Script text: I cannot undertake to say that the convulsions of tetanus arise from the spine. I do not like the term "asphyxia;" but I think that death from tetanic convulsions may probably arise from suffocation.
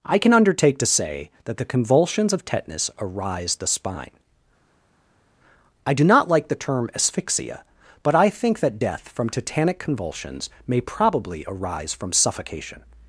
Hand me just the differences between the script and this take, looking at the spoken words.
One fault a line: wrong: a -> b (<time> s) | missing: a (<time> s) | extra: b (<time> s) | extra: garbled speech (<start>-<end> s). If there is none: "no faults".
wrong: cannot -> can (0.2 s)
missing: from (3.5 s)